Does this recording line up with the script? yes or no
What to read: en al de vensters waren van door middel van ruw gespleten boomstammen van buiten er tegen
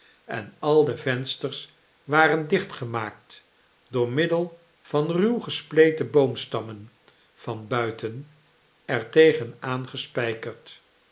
no